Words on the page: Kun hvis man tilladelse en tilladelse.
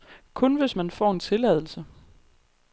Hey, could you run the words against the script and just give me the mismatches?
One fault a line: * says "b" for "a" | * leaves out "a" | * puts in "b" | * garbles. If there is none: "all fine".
* says "får" for "tilladelse"